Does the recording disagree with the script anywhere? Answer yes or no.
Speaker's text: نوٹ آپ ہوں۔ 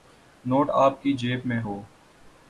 yes